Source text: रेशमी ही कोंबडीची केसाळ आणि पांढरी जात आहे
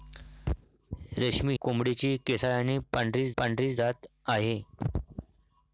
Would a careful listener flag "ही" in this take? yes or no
yes